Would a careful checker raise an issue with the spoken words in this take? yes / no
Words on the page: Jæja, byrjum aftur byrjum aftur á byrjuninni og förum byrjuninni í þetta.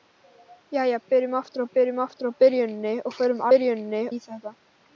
no